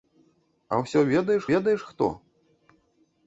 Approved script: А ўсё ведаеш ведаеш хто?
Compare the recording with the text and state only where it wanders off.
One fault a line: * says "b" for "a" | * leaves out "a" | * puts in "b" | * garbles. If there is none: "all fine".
all fine